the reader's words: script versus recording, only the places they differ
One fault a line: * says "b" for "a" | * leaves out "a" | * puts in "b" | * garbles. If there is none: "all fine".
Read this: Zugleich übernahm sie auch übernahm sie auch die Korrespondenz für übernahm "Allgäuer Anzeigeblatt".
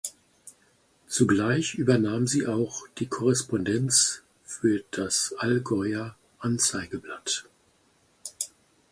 * leaves out "übernahm sie auch"
* says "das" for "übernahm"